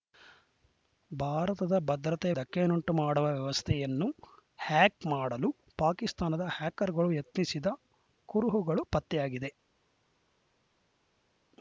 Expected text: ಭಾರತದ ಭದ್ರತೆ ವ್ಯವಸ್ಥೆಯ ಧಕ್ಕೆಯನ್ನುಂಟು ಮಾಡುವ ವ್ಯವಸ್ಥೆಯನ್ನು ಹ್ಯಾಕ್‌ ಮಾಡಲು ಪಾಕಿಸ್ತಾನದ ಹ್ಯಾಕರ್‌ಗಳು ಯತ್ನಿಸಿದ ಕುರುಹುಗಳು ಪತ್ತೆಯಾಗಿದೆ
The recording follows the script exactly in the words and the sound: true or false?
false